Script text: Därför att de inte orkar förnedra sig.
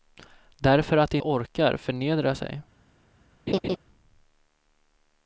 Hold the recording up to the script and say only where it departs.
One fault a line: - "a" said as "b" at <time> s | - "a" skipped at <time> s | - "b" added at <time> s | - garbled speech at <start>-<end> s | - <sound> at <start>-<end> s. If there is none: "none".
- "inte" skipped at 1.2 s
- laugh at 3.5-3.8 s